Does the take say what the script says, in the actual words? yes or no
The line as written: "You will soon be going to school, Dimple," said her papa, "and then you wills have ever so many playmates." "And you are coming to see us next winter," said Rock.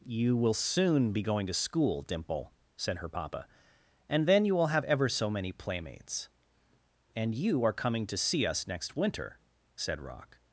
no